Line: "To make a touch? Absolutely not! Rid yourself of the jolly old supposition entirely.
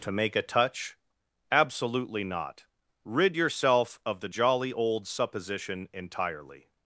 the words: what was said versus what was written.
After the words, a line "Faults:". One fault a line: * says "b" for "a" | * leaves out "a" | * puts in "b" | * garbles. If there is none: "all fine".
"To make a touch? Absolutely not! Rid yourself of the jolly old supposition entirely.
Faults:
all fine